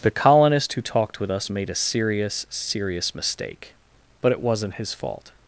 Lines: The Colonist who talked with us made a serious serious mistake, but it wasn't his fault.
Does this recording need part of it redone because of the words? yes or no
no